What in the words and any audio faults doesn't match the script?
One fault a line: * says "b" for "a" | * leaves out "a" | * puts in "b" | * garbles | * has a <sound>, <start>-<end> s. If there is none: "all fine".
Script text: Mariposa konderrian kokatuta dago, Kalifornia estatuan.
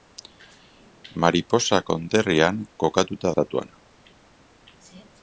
* leaves out "dago Kalifornia"